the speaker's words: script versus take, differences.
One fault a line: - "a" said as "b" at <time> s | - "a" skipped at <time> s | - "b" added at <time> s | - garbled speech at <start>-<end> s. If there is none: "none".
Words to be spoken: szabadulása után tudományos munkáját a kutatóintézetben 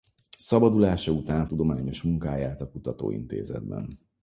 none